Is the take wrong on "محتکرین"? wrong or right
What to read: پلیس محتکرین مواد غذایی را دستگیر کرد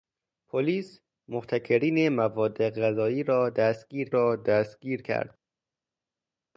right